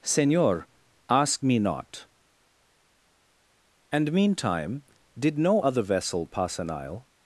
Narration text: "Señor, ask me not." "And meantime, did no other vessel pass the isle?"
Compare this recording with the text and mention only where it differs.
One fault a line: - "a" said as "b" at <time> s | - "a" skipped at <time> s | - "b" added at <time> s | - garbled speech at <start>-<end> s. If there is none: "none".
- "the" said as "an" at 6.6 s